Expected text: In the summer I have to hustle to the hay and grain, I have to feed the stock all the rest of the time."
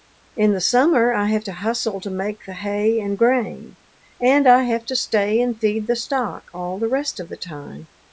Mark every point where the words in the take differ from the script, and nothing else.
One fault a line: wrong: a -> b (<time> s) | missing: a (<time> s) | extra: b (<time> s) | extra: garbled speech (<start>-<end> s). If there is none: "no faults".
extra: make (2.1 s)
extra: and (4.2 s)
extra: stay and (5.0 s)